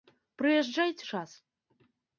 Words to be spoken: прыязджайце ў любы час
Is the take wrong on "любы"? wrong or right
wrong